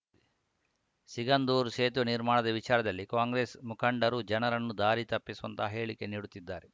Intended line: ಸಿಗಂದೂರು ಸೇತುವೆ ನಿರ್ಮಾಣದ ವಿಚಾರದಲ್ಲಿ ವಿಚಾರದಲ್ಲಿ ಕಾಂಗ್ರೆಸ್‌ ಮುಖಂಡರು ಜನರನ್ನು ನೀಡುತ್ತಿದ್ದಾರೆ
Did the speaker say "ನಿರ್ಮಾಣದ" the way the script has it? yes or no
yes